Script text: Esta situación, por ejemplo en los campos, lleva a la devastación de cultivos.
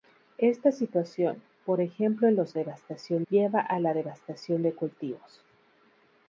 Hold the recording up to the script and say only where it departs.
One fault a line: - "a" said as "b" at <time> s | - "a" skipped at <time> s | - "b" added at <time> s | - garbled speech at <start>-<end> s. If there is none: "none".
- "campos" said as "devastación" at 2.6 s